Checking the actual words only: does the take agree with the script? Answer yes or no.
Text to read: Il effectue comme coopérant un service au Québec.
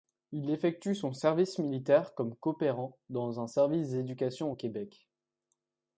no